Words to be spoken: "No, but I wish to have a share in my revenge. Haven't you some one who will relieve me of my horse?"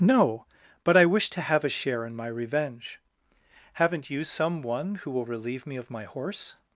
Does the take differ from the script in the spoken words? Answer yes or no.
no